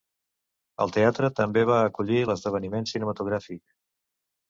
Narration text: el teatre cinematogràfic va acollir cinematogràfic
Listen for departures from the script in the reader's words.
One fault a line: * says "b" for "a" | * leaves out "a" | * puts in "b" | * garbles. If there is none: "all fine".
* says "també" for "cinematogràfic"
* puts in "l'esdeveniment"